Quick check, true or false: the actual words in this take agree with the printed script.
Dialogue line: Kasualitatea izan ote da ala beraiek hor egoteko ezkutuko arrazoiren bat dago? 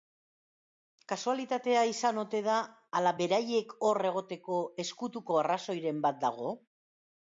true